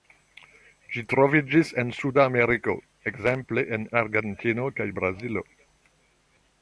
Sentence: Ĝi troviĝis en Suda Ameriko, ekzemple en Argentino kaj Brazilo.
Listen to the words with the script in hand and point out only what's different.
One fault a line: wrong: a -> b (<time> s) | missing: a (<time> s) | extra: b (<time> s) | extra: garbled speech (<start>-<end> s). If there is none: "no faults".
no faults